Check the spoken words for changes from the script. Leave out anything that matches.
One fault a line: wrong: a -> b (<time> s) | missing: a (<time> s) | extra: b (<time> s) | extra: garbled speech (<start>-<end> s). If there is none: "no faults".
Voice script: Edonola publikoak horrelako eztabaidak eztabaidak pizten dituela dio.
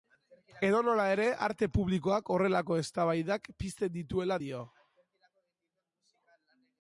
extra: ere arte (1.1 s)
missing: eztabaidak (3.5 s)